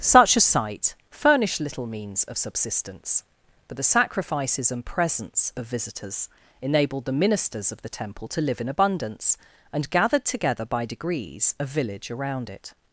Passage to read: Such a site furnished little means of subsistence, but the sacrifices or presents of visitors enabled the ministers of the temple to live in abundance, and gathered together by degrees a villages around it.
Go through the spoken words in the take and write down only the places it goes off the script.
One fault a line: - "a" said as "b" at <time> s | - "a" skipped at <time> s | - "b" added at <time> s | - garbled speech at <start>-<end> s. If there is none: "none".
- "or" said as "and" at 4.7 s
- "villages" said as "village" at 11.6 s